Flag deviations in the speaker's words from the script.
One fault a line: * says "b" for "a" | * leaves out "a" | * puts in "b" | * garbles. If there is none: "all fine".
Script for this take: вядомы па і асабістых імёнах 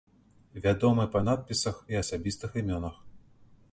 * puts in "надпісах"